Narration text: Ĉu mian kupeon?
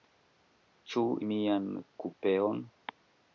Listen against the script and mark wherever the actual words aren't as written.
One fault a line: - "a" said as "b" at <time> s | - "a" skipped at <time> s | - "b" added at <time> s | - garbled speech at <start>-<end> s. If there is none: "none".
none